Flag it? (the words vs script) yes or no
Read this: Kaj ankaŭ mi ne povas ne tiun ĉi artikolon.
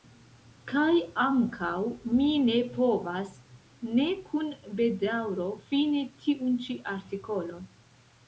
yes